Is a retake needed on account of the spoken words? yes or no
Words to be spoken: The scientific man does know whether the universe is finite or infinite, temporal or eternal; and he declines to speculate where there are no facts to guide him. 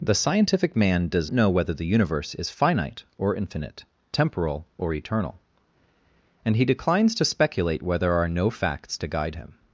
no